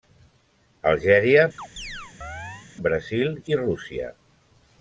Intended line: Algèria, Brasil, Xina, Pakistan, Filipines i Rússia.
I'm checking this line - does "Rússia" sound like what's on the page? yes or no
yes